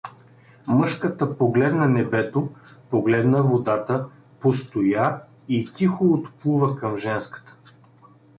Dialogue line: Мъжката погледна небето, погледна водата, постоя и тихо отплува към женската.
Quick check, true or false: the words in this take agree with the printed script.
true